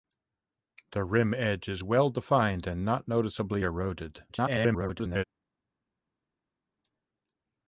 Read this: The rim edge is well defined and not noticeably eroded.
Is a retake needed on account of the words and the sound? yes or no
yes